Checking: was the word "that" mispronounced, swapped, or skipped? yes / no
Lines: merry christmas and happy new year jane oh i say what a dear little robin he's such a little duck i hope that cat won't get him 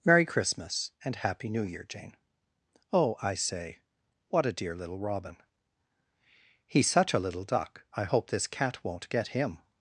yes